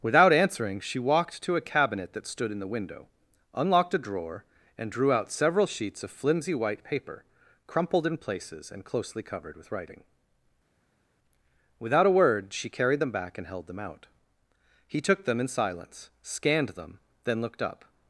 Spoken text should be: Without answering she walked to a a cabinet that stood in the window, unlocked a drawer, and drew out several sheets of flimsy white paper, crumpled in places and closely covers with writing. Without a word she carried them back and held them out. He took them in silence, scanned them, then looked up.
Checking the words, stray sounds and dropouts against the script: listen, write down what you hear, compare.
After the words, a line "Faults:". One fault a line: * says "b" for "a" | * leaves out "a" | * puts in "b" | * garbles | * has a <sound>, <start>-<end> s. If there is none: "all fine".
Without answering she walked to a cabinet that stood in the window, unlocked a drawer, and drew out several sheets of flimsy white paper, crumpled in places and closely covered with writing. Without a word she carried them back and held them out. He took them in silence, scanned them, then looked up.
Faults:
* leaves out "a"
* says "covered" for "covers"